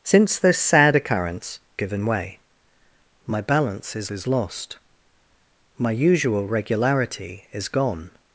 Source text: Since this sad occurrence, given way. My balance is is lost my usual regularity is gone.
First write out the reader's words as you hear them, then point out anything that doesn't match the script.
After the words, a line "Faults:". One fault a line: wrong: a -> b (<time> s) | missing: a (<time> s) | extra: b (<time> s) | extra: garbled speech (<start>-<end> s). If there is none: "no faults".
Since this sad occurrence, given way. My balance is is lost my usual regularity is gone.
Faults:
no faults